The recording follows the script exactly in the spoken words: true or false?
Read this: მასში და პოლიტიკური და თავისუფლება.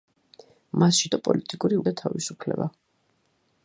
true